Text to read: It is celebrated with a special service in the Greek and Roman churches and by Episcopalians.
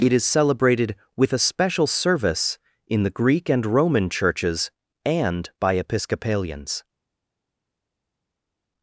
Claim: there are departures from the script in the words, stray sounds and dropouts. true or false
false